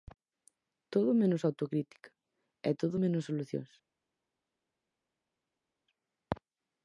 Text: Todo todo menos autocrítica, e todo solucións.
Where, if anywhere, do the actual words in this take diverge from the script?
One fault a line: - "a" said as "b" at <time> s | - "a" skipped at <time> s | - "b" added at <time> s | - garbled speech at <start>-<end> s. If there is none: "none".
- "todo" skipped at 1.1 s
- "menos" added at 3.0 s